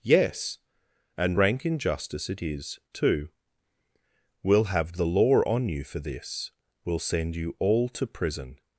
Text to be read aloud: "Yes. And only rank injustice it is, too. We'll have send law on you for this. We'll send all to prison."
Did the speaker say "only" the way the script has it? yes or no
no